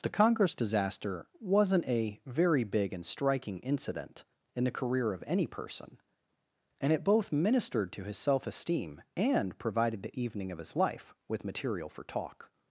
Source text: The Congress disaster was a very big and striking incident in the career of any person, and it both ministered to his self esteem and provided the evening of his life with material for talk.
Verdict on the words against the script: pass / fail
fail